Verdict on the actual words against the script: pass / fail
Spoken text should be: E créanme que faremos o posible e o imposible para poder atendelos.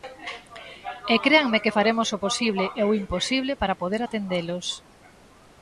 pass